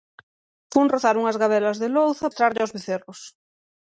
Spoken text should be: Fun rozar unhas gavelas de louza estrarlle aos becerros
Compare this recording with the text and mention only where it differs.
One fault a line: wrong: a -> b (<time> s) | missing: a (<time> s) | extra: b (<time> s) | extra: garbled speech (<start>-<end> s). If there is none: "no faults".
no faults